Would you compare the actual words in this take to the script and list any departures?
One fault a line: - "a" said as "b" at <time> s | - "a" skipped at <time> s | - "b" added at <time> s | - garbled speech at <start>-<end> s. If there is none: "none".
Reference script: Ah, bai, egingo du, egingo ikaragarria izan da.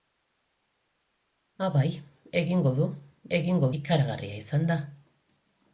none